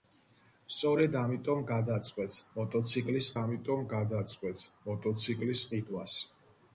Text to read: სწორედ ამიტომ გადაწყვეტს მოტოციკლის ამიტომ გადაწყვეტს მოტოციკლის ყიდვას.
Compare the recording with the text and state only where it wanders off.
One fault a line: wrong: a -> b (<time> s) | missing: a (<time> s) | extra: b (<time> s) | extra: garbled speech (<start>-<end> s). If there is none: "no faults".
no faults